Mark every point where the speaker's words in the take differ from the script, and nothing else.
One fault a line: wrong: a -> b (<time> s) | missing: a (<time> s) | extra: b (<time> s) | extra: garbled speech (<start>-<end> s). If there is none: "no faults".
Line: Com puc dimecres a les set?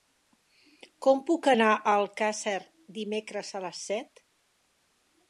extra: anar a Alcàsser (1.5 s)